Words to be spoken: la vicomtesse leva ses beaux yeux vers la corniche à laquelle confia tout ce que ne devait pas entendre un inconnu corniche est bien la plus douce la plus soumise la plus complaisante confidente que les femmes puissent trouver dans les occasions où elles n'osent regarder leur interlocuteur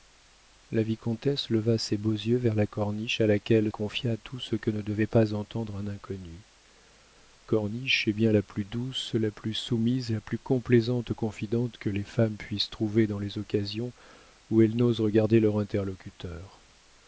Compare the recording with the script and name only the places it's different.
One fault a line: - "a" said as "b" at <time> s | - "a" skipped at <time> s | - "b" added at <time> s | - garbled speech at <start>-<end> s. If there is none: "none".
none